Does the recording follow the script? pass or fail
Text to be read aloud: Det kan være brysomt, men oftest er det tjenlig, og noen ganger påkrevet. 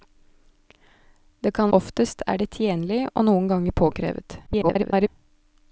fail